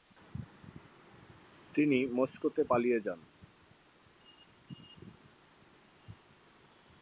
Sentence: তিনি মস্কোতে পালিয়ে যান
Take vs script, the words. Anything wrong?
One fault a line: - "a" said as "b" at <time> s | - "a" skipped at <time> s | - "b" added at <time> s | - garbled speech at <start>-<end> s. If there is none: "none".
none